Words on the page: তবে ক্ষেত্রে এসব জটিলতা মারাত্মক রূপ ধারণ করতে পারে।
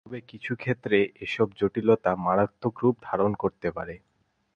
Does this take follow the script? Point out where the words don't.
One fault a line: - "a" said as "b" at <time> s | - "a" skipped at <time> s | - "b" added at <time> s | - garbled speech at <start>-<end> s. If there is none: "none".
- "কিছু" added at 0.3 s